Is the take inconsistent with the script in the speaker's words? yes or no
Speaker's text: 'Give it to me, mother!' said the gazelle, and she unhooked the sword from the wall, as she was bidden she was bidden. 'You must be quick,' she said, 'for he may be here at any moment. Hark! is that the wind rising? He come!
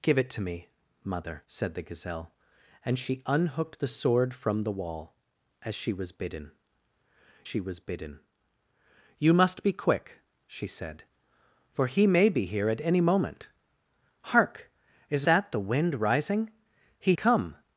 no